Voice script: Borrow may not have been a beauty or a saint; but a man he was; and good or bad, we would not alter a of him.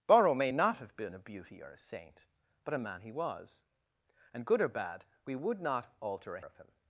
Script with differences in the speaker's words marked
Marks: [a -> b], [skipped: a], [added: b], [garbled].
Borrow may not have been a beauty or a saint; but a man he was; and good or bad, we would not alter a of him.